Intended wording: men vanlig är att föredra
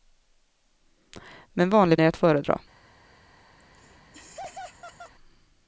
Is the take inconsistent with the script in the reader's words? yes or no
no